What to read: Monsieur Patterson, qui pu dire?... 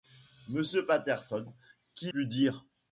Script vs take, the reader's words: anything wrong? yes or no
no